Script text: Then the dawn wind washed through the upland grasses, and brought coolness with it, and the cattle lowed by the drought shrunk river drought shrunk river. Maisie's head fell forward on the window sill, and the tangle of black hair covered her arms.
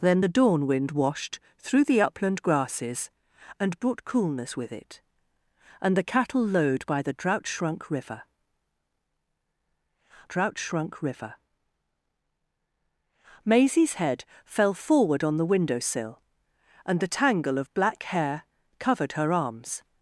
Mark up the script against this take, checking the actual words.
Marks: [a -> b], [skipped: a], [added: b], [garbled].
Then the dawn wind washed through the upland grasses, and brought coolness with it, and the cattle lowed by the drought shrunk river drought shrunk river. Maisie's head fell forward on the window sill, and the tangle of black hair covered her arms.